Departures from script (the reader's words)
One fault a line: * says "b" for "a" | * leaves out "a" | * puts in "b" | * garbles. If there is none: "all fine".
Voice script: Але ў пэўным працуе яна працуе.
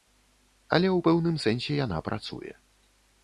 * says "сэнсе" for "працуе"